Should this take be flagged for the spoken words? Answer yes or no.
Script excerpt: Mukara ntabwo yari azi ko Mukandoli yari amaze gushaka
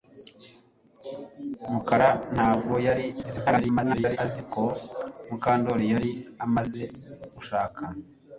yes